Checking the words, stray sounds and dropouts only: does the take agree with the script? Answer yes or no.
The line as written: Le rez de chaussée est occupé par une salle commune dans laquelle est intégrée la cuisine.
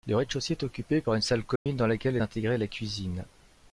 no